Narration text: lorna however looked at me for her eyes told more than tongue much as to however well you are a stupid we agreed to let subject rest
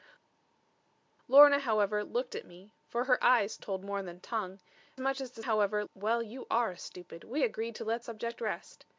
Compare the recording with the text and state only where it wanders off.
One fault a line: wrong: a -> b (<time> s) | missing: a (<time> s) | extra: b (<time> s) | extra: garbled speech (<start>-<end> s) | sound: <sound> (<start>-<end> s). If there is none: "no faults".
no faults